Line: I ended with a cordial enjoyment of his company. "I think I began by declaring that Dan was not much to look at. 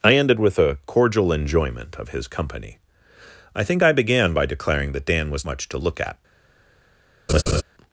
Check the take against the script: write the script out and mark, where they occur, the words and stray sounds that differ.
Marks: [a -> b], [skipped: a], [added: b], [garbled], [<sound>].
I ended with a cordial enjoyment of his company. "I think I began by declaring that Dan was [skipped: not] much to look at. [laugh]